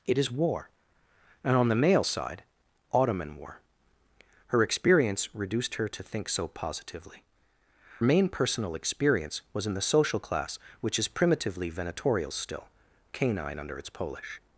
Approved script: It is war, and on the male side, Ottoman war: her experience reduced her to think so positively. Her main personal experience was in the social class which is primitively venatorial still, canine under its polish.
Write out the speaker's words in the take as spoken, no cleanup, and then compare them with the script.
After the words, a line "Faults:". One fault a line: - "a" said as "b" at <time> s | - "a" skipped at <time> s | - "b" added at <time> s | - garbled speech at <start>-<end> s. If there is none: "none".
It is war, and on the male side, Ottoman war: her experience reduced her to think so positively. Main personal experience was in the social class which is primitively venatorial still, canine under its polish.
Faults:
- "Her" skipped at 7.3 s